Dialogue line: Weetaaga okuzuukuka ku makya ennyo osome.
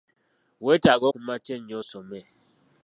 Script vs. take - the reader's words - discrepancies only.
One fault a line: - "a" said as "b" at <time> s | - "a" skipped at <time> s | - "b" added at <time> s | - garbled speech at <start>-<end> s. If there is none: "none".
- "okuzuukuka" skipped at 1.1 s